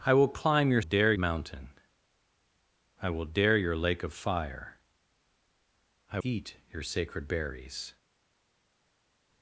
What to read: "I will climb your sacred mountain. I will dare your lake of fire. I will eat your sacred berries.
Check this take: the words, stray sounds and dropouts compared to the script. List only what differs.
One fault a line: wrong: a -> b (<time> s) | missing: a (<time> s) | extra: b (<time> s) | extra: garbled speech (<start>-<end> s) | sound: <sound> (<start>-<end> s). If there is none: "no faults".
wrong: sacred -> dare (0.8 s)
missing: will (6.2 s)